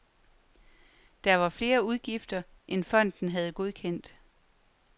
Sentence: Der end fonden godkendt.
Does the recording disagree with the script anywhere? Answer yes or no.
yes